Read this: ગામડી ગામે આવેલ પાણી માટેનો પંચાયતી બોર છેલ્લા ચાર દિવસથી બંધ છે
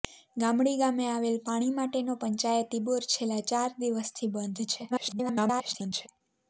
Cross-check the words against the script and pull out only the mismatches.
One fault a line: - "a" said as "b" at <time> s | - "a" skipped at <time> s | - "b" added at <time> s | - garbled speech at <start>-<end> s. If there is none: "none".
- garbled speech at 4.9-6.1 s